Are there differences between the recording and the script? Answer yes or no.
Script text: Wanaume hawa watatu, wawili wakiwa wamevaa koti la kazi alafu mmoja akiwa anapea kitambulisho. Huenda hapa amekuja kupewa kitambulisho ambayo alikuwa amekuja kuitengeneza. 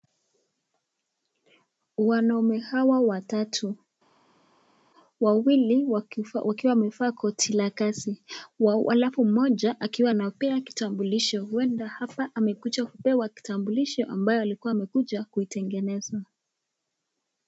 no